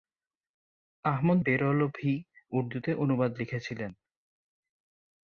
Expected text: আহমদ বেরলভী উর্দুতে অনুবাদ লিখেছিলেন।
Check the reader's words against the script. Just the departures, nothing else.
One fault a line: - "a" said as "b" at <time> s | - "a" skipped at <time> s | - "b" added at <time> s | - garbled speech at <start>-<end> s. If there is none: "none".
none